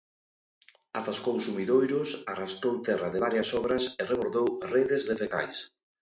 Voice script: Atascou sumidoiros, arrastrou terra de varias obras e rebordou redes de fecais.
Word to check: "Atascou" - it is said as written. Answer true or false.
true